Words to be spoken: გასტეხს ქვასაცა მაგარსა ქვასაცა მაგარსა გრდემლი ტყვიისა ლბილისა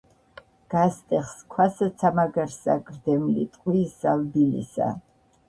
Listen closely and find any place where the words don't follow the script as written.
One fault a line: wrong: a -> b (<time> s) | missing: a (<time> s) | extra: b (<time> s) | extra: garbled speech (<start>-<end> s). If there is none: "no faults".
missing: ქვასაცა მაგარსა (2.8 s)